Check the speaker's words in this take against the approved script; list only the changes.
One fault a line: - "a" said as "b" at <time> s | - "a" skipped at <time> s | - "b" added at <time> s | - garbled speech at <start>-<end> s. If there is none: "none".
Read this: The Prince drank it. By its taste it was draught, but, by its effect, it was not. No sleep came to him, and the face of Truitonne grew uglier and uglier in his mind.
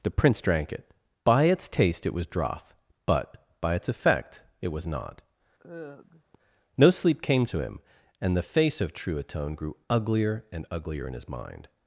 none